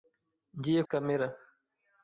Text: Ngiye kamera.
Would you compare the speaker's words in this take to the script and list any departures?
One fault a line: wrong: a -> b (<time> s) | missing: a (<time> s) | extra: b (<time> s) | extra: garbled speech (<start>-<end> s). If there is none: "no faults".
no faults